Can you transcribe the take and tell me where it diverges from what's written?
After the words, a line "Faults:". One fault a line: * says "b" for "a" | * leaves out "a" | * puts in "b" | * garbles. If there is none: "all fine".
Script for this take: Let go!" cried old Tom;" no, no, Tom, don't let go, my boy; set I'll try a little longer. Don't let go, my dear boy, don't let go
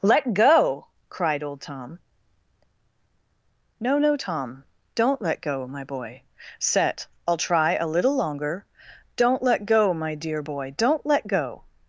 Let go!" cried old Tom;" no, no, Tom, don't let go, my boy; set I'll try a little longer. Don't let go, my dear boy, don't let go
Faults:
all fine